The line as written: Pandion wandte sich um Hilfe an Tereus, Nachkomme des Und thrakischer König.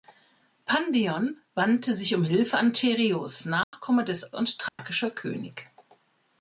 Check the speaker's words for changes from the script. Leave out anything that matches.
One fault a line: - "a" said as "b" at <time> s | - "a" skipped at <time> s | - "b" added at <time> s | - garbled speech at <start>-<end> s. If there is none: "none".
none